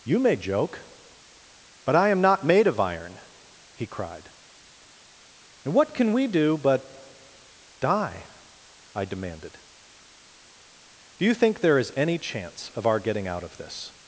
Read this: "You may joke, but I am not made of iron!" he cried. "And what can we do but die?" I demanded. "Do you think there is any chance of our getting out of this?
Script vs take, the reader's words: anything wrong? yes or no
no